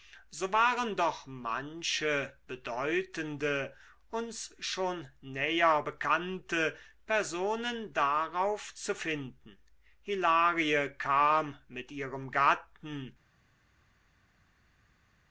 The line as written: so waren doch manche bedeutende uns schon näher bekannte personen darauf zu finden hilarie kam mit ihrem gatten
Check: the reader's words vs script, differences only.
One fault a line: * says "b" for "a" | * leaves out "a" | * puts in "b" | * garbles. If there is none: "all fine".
all fine